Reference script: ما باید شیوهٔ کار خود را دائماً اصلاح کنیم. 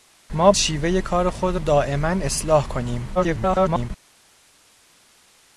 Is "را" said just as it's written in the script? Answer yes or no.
no